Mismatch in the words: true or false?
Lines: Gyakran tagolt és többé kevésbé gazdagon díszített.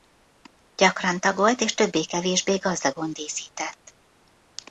false